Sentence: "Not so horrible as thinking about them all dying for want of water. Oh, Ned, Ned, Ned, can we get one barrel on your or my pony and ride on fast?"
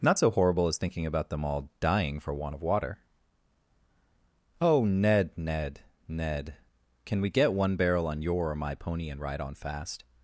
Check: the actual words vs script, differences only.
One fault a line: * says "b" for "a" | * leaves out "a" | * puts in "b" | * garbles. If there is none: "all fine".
all fine